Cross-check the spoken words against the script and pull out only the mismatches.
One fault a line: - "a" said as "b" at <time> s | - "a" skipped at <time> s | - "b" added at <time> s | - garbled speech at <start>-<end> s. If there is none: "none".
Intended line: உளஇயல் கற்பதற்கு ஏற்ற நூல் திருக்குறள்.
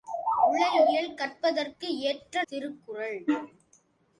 - "நூல்" skipped at 2.4 s